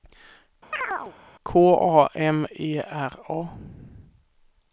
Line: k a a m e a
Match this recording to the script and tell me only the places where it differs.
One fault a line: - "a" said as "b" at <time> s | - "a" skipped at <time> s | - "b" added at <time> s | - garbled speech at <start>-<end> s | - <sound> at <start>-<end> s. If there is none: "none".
- chirp at 0.7-1.1 s
- "a" skipped at 2.1 s
- "r" added at 2.8 s